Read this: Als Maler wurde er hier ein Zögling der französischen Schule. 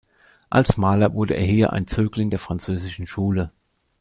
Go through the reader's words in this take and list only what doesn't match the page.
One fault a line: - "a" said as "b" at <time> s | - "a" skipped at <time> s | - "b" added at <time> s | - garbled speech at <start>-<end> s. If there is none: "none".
none